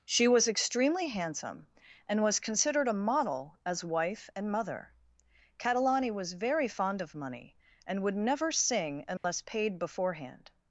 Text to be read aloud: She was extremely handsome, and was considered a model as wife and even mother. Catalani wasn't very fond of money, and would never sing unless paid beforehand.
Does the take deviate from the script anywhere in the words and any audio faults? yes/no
yes